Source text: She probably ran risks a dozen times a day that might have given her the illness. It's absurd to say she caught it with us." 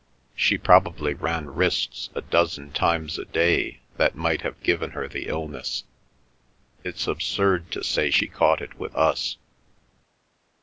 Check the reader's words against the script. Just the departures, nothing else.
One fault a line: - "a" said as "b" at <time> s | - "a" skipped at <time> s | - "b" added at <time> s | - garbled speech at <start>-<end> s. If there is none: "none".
none